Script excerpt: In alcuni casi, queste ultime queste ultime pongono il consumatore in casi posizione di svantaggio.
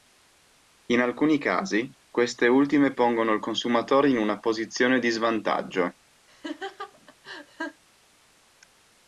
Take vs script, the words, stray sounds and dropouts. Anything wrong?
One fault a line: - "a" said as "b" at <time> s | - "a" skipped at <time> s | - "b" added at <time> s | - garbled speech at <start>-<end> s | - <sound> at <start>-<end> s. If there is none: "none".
- "queste ultime" skipped at 2.9 s
- "casi" said as "una" at 4.2 s
- laugh at 6.3-7.8 s